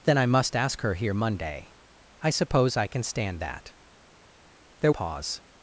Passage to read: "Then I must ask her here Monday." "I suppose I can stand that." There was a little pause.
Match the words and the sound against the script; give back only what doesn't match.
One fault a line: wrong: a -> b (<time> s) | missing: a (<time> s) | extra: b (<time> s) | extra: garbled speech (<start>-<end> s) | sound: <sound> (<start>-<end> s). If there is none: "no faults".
missing: was a little (4.9 s)